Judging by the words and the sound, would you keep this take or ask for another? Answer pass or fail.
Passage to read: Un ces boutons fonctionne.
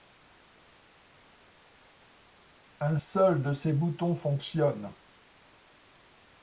fail